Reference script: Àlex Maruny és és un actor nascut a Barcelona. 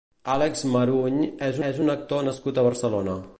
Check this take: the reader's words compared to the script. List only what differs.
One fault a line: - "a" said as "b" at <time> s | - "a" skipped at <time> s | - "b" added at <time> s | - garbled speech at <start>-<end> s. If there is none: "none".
none